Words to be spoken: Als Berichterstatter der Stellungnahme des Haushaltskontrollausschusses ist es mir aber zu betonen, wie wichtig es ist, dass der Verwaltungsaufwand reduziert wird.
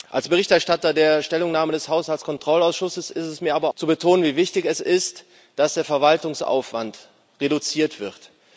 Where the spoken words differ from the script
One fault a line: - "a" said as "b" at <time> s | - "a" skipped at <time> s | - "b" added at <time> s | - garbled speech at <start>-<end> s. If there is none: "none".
none